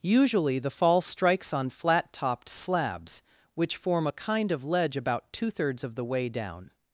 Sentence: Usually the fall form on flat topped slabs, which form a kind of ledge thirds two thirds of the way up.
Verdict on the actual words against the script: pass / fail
fail